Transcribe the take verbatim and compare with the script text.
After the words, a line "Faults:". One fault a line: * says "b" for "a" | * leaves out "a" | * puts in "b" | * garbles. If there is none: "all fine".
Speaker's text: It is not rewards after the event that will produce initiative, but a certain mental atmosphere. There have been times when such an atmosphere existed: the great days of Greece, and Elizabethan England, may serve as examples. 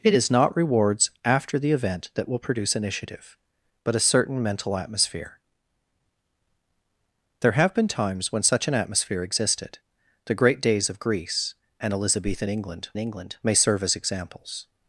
It is not rewards after the event that will produce initiative, but a certain mental atmosphere. There have been times when such an atmosphere existed: the great days of Greece, and Elizabethan England England, may serve as examples.
Faults:
* puts in "England"